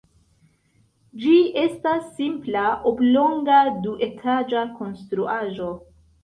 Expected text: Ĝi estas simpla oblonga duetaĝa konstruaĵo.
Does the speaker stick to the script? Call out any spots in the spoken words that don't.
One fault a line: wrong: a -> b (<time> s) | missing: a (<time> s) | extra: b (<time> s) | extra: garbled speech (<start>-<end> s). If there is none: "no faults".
no faults